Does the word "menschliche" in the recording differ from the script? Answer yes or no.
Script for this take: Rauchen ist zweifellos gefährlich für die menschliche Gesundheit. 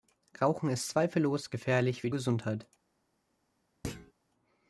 yes